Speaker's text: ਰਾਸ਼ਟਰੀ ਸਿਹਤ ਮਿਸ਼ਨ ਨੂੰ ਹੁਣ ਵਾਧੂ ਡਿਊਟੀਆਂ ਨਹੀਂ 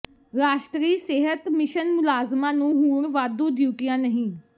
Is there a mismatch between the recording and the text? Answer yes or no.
yes